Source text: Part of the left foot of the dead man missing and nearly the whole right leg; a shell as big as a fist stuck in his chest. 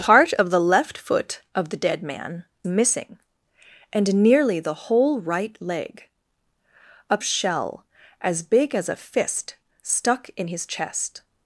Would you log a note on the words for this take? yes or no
no